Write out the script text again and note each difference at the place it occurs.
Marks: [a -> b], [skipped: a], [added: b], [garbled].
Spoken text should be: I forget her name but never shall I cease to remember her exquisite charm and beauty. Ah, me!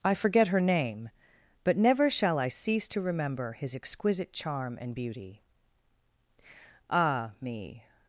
I forget her name but never shall I cease to remember [her -> his] exquisite charm and beauty. Ah, me!